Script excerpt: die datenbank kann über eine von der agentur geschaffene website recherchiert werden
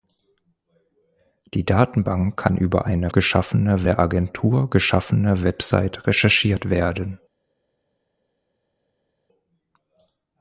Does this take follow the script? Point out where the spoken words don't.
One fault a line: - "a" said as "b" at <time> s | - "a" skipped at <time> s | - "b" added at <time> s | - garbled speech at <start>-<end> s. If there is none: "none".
- "von" said as "geschaffene" at 3.1 s